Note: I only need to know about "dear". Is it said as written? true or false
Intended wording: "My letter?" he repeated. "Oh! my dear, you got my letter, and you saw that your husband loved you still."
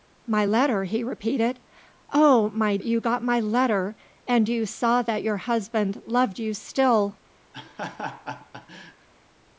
false